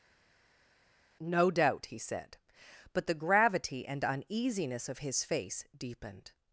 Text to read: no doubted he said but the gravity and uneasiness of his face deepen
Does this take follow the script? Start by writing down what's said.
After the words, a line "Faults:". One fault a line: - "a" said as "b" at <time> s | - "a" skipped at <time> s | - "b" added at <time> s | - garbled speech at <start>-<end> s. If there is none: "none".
no doubt he said but the gravity and uneasiness of his face deepened
Faults:
- "doubted" said as "doubt" at 1.5 s
- "deepen" said as "deepened" at 5.8 s